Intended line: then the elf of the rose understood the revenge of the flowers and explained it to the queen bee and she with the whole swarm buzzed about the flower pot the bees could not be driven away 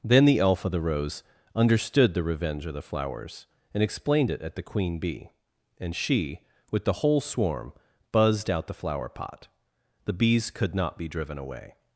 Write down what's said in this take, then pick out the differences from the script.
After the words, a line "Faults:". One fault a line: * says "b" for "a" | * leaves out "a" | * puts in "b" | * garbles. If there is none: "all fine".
then the elf of the rose understood the revenge of the flowers and explained it at the queen bee and she with the whole swarm buzzed out the flower pot the bees could not be driven away
Faults:
* says "at" for "to"
* says "out" for "about"